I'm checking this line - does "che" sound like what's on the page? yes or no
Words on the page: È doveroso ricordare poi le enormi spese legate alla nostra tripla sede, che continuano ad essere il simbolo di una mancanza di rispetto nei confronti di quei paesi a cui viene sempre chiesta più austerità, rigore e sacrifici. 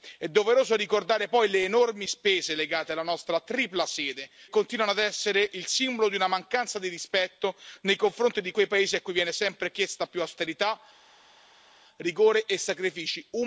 no